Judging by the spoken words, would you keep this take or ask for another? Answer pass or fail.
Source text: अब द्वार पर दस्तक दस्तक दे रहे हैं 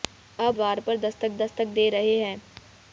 pass